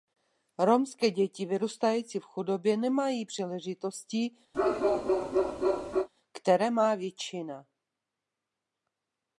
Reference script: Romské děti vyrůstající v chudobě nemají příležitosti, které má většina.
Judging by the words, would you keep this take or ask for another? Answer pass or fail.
pass